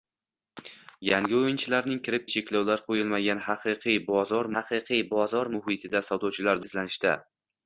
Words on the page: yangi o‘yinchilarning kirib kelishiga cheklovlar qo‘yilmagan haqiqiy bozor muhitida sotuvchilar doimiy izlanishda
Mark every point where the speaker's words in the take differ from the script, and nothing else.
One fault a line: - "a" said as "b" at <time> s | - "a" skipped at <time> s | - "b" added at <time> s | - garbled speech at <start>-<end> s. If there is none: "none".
- "kelishiga" skipped at 2.2 s
- "haqiqiy bozor" added at 4.5 s
- "doimiy" skipped at 6.6 s